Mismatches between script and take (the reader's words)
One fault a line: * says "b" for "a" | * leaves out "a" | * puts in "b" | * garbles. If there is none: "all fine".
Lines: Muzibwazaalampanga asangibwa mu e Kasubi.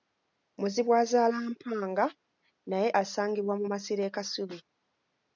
* puts in "naye"
* puts in "masiro"